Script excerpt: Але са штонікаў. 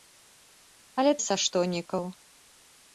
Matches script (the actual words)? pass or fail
pass